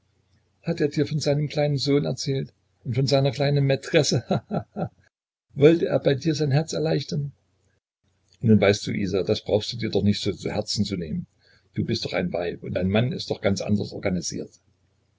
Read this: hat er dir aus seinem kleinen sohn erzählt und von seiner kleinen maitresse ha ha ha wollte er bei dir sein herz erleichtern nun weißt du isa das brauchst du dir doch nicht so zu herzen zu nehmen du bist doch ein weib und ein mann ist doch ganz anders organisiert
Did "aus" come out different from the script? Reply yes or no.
yes